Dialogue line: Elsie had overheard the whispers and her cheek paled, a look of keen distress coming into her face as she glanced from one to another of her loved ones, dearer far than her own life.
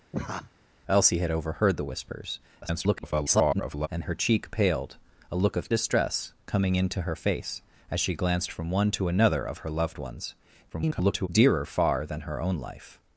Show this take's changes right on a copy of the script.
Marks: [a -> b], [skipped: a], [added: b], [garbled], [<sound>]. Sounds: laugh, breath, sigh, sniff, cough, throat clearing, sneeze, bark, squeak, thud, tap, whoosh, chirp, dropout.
[laugh] Elsie had overheard the whispers [garbled] and her cheek paled, a look of [skipped: keen] distress coming into her face as she glanced from one to another of her loved ones, [garbled] dearer far than her own life.